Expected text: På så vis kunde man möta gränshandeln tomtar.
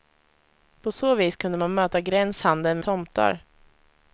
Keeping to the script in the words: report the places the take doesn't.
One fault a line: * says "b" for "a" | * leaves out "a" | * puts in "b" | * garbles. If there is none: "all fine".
all fine